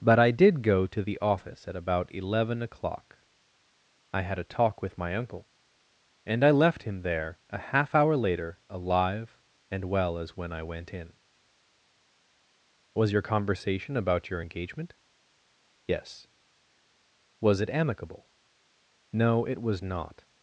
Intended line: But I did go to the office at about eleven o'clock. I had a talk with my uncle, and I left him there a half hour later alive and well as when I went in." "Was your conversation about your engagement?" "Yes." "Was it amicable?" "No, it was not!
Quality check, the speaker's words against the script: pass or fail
pass